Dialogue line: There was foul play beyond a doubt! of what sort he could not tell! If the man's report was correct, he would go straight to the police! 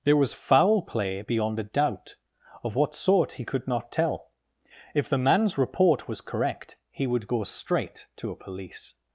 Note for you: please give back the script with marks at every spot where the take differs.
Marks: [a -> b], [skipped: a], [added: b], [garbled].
There was foul play beyond a doubt! of what sort he could not tell! If the man's report was correct, he would go straight to [the -> a] police!